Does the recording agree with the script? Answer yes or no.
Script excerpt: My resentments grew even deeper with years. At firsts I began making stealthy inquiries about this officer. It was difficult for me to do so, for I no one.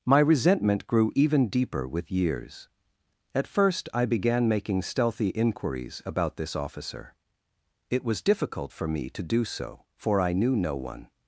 no